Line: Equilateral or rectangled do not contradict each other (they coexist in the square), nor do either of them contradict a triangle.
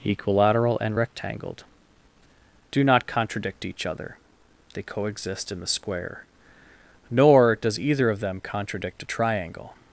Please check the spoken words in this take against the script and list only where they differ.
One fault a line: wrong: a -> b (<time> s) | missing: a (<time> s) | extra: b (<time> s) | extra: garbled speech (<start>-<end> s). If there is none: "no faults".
wrong: or -> and (0.8 s)
wrong: do -> does (7.6 s)